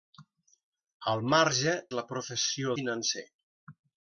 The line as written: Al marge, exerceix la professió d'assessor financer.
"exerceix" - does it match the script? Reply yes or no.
no